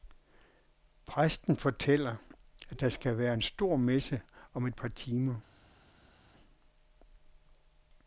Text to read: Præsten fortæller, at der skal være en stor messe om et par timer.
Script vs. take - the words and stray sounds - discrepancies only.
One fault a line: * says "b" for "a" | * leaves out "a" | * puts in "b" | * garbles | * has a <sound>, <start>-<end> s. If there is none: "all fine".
all fine